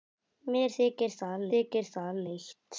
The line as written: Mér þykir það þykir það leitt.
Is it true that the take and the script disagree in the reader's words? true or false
false